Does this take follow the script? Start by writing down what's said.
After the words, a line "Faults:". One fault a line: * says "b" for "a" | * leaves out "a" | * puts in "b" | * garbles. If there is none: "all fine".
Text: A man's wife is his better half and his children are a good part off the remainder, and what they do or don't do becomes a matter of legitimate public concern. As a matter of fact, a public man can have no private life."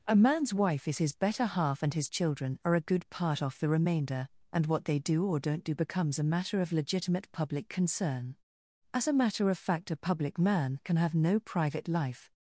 A man's wife is his better half and his children are a good part off the remainder, and what they do or don't do becomes a matter of legitimate public concern. As a matter of fact, a public man can have no private life."
Faults:
all fine